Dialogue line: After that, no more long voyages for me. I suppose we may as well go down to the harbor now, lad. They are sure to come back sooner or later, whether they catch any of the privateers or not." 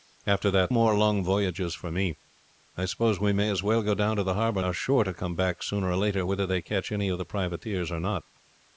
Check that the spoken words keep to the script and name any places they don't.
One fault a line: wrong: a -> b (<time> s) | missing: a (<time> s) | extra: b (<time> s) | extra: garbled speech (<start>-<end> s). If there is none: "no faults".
missing: no (0.7 s)
missing: now lad They (4.6 s)